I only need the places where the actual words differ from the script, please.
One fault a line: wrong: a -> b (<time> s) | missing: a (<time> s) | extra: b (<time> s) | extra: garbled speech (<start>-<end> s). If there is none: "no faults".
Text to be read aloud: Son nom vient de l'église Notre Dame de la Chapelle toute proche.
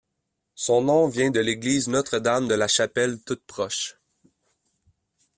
no faults